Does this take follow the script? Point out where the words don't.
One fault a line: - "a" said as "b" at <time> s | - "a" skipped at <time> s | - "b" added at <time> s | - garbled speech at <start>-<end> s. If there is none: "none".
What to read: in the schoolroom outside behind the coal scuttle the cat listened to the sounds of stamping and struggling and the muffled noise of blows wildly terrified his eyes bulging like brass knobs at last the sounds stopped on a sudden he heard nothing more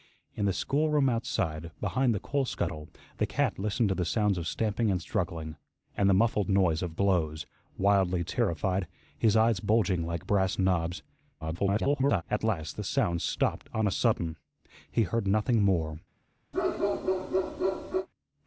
- garbled speech at 11.4-12.2 s